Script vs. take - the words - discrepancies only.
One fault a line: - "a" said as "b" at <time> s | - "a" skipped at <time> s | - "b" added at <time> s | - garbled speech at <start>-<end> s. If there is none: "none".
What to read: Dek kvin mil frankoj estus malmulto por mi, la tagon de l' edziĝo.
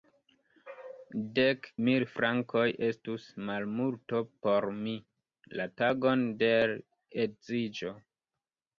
- "kvin" skipped at 1.7 s